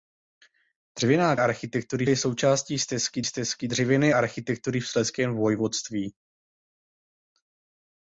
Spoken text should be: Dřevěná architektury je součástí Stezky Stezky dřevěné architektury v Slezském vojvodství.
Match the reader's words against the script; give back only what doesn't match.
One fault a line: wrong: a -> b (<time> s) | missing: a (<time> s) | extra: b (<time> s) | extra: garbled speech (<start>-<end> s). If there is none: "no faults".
no faults